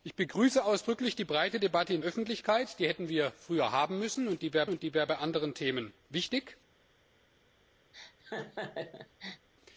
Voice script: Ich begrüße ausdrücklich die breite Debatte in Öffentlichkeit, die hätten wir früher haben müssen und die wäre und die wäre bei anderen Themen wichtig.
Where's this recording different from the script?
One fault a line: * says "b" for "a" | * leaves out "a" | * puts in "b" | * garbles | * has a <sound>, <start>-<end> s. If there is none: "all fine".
* has a laugh, 7.9-9.5 s